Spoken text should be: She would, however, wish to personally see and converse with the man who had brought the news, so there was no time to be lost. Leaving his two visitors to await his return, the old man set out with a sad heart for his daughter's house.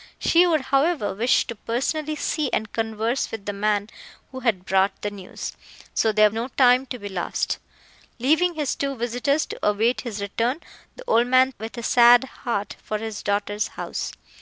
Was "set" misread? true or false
true